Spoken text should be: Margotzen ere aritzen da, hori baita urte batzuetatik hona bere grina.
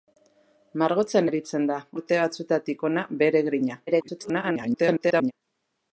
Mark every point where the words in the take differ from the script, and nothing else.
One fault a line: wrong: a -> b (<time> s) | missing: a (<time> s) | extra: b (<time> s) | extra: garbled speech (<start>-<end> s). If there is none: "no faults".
missing: ere (1.3 s)
missing: hori baita (1.8 s)
extra: garbled speech (3.9-5.3 s)